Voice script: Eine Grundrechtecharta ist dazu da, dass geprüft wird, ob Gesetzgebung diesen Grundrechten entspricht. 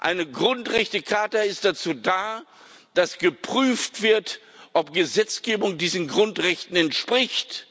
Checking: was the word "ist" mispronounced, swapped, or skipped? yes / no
no